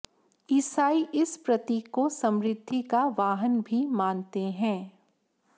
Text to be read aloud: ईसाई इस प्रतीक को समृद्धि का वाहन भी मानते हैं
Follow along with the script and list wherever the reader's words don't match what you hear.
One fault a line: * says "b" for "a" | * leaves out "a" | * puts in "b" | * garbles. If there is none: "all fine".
all fine